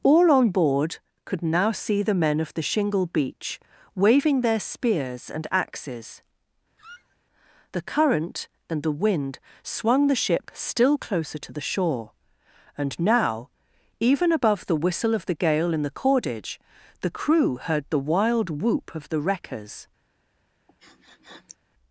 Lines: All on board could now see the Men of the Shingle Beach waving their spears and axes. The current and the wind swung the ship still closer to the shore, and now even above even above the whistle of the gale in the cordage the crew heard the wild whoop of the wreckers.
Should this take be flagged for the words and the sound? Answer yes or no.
yes